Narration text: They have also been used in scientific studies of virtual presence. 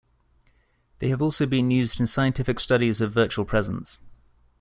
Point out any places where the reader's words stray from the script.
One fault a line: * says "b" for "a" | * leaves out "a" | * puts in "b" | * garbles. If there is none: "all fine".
all fine